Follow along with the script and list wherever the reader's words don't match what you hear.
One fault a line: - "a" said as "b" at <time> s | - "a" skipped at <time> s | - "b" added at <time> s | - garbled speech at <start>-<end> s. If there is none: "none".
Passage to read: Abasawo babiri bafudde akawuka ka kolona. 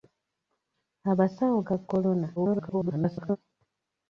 - "babiri bafudde akawuka" skipped at 1.6 s
- garbled speech at 2.4-3.4 s